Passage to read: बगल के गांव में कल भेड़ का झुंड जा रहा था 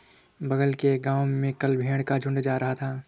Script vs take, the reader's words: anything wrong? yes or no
no